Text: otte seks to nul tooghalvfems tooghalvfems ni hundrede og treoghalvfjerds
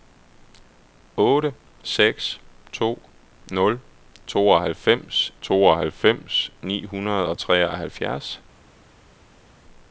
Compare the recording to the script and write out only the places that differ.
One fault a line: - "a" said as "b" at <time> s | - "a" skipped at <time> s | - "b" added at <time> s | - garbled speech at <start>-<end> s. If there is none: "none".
none